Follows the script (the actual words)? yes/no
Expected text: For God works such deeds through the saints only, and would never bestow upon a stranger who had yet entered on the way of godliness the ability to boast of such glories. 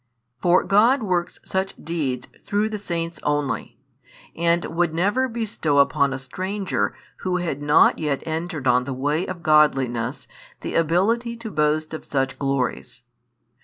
no